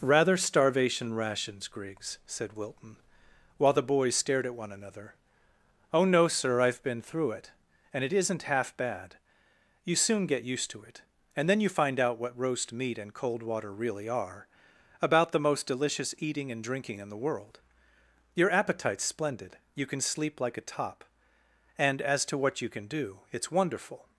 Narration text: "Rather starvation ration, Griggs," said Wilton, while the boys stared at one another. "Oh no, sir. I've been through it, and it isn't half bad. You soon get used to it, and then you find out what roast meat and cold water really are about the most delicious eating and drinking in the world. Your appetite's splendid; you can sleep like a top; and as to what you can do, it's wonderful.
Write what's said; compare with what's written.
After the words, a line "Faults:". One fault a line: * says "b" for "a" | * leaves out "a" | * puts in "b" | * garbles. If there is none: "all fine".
"Rather starvation rations, Griggs," said Wilton, while the boys stared at one another. "Oh no, sir. I've been through it, and it isn't half bad. You soon get used to it, and then you find out what roast meat and cold water really are about the most delicious eating and drinking in the world. Your appetite's splendid; you can sleep like a top; and as to what you can do, it's wonderful.
Faults:
* says "rations" for "ration"